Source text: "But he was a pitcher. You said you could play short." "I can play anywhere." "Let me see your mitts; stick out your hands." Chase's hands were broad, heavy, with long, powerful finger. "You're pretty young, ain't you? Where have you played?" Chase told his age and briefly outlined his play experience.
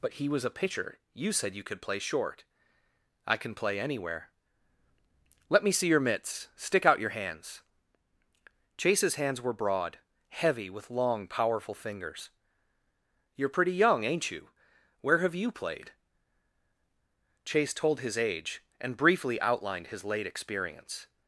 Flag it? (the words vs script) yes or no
yes